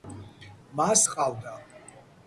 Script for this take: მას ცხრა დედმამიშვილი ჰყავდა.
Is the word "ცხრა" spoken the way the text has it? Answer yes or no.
no